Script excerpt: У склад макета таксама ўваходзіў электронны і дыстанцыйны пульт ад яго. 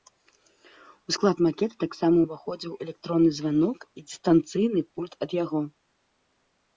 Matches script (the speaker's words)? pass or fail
fail